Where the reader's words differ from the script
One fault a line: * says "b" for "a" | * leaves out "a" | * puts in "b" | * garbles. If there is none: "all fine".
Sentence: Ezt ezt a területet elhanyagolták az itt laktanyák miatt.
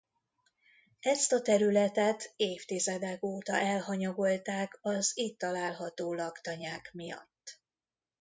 * leaves out "ezt"
* puts in "évtizedek óta"
* puts in "található"